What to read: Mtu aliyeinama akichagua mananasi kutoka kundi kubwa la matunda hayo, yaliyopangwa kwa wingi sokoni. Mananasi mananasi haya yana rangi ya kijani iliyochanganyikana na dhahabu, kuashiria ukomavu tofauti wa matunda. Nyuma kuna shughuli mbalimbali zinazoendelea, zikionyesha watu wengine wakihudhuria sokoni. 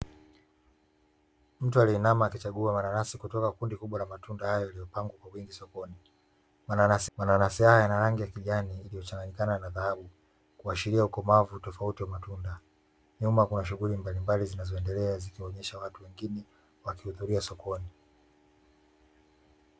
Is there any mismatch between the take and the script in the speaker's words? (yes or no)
no